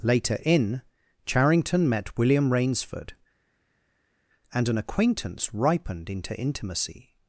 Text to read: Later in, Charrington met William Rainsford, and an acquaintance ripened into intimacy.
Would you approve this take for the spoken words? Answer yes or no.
yes